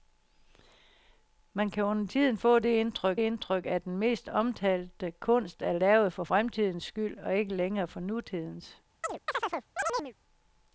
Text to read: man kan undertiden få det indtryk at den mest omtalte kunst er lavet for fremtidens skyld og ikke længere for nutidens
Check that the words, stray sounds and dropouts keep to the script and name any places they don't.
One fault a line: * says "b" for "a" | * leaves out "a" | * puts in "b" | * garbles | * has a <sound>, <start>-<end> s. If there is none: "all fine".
* puts in "indtryk"
* has a chirp, 9.0-10.1 s